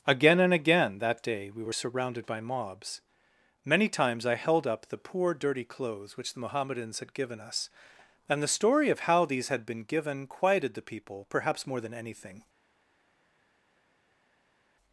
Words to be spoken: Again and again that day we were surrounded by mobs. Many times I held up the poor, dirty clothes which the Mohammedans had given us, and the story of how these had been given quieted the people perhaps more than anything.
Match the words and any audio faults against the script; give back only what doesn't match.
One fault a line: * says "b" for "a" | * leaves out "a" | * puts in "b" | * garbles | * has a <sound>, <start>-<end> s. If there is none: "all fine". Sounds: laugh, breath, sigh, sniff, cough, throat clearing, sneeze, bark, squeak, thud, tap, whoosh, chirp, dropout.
all fine